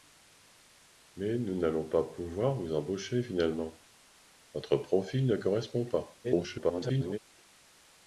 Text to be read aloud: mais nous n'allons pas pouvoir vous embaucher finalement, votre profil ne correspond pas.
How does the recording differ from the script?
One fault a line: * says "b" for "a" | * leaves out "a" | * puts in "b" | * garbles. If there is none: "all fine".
* garbles